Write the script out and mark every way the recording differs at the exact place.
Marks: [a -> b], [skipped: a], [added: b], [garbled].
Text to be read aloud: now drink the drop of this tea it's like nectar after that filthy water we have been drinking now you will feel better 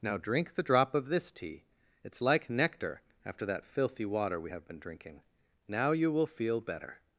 now drink the drop of this tea it's like nectar after that filthy water we have been drinking now you will feel better